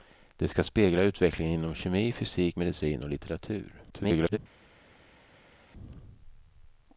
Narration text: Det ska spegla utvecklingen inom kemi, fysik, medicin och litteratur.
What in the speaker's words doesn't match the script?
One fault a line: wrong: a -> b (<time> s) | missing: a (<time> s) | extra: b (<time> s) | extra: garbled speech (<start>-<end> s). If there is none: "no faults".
extra: garbled speech (3.9-4.4 s)